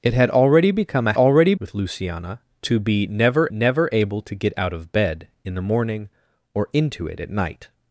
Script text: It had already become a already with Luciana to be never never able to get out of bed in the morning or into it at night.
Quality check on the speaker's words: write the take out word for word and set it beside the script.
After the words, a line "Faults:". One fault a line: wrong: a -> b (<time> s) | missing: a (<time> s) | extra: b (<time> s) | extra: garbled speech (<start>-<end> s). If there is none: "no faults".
It had already become a already with Luciana to be never never able to get out of bed in the morning or into it at night.
Faults:
no faults